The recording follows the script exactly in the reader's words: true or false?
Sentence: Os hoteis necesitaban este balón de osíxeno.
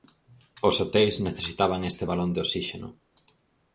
true